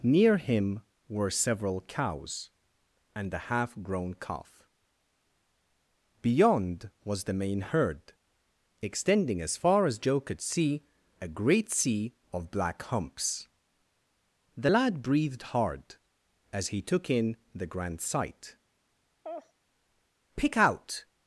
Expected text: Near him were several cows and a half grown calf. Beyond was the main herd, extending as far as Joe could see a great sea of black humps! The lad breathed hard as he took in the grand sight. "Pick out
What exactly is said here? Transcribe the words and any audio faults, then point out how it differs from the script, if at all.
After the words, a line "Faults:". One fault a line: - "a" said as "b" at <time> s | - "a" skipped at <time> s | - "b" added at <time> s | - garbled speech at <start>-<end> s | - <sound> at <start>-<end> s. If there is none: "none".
Near him were several cows and a half grown calf. Beyond was the main herd, extending as far as Joe could see a great sea of black humps! The lad breathed hard as he took in the grand sight. "Pick out
Faults:
- laugh at 19.2-19.5 s